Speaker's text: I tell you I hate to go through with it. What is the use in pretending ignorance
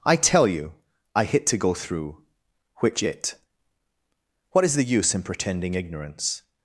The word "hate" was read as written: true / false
false